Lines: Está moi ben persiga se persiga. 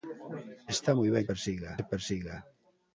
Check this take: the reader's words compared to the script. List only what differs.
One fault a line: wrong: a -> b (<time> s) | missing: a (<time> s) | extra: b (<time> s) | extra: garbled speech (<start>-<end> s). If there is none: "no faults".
no faults